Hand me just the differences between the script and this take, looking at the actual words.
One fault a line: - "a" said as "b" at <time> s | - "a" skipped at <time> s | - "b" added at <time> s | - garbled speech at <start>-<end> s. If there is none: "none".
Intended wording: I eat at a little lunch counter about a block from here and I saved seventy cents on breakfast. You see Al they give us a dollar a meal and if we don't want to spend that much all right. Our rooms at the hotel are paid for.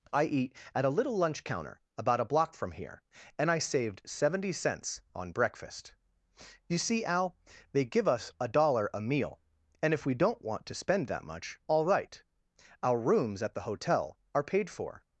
none